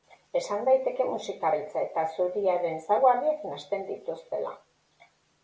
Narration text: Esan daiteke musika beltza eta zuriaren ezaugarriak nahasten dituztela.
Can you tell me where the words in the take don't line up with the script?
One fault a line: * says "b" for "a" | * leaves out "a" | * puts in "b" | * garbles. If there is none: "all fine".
all fine